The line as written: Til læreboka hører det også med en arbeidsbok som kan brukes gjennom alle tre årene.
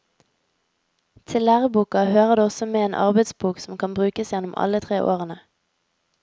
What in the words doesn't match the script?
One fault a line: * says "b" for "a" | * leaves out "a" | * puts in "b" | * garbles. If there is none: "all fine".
all fine